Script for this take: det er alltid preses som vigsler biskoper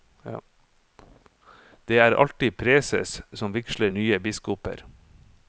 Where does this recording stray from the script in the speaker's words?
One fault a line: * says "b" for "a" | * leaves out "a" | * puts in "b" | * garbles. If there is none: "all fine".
* puts in "nye"